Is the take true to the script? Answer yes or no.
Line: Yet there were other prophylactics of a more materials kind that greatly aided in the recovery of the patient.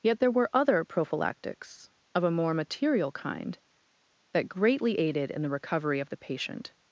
no